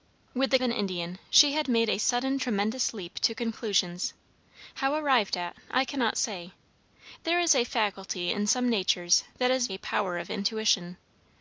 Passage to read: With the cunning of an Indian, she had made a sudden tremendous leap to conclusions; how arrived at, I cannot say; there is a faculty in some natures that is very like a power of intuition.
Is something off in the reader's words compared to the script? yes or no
yes